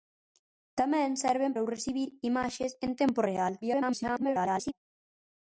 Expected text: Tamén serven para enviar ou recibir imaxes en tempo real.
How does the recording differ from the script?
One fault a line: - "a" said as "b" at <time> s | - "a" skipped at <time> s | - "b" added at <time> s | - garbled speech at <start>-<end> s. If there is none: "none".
- "para enviar" skipped at 1.5 s
- garbled speech at 3.6-4.7 s